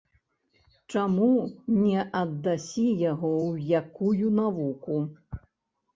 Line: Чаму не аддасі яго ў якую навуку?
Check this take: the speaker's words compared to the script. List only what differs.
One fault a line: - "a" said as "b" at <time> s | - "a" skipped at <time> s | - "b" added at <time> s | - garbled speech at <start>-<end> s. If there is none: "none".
none